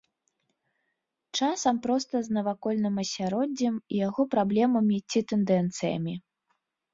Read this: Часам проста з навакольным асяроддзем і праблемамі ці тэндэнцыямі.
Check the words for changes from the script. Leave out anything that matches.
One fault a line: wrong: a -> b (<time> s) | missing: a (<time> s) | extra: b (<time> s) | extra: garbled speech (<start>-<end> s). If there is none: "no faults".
extra: яго (4.1 s)